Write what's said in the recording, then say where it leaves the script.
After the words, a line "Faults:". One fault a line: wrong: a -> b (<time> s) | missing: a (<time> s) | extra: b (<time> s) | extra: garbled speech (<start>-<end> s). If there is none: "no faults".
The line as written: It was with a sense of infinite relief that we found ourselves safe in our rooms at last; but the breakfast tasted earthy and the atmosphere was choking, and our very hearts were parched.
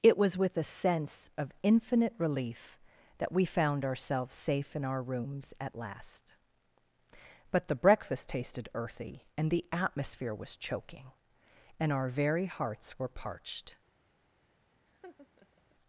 It was with a sense of infinite relief that we found ourselves safe in our rooms at last; but the breakfast tasted earthy and the atmosphere was choking, and our very hearts were parched.
Faults:
no faults